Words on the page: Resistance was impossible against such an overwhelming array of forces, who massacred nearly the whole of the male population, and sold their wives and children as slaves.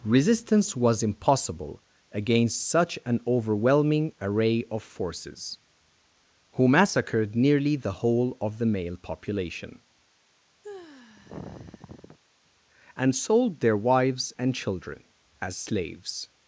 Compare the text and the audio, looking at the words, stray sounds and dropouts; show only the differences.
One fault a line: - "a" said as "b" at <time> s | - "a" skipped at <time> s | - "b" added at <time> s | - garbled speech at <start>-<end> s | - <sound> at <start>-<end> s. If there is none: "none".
- sigh at 10.6-12.2 s